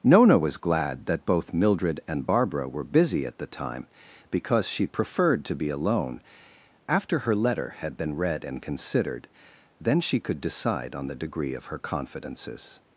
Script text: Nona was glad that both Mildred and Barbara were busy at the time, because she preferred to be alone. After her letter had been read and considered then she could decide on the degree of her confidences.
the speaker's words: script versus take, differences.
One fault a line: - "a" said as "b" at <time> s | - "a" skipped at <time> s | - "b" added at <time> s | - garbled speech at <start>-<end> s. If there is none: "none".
none